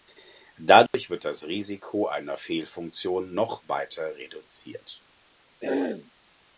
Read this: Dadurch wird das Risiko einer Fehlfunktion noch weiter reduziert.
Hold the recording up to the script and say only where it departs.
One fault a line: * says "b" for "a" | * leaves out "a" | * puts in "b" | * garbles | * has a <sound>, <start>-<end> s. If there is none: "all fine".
* has a dropout, 0.9-0.9 s
* has a throat clearing, 5.6-6.1 s